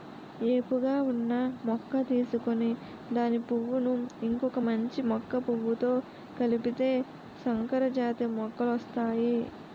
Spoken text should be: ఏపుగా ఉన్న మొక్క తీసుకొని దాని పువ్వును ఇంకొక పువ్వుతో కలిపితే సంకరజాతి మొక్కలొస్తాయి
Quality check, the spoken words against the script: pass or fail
fail